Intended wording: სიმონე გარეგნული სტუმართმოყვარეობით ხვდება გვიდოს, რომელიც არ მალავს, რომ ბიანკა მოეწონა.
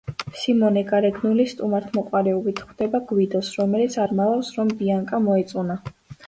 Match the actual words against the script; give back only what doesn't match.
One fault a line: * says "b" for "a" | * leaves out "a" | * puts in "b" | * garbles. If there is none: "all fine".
all fine